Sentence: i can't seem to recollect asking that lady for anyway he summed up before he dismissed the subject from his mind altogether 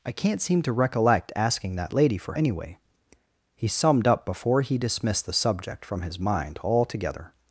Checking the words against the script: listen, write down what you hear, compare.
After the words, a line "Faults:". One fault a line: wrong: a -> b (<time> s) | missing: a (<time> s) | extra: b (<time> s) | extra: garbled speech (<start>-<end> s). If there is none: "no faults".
i can't seem to recollect asking that lady for anyway he summed up before he dismissed the subject from his mind altogether
Faults:
no faults